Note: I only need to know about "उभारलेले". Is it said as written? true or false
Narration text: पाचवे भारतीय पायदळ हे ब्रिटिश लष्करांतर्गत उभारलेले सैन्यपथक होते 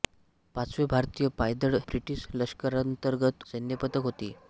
false